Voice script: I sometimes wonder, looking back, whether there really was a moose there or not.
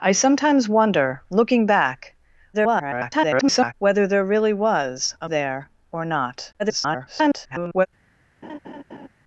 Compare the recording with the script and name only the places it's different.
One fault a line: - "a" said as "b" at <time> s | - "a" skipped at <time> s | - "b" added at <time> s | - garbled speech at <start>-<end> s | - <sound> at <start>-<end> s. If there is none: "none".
- garbled speech at 2.5-3.7 s
- "moose" skipped at 5.3 s
- garbled speech at 6.6-7.9 s
- laugh at 8.4-9.1 s